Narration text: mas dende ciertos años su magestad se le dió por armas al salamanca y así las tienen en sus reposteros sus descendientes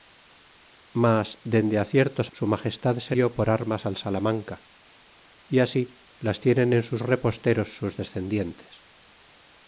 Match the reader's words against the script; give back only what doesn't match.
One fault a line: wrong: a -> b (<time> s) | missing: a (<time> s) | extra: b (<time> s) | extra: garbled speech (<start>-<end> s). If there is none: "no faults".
missing: años (2.3 s)
missing: le (3.1 s)